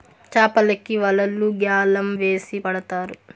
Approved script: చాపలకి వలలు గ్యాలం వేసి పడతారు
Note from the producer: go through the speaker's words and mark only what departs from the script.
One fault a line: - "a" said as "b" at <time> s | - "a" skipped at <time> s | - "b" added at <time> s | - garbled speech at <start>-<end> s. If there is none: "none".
none